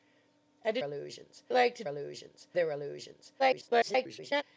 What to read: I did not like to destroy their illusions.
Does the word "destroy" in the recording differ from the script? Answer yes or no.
yes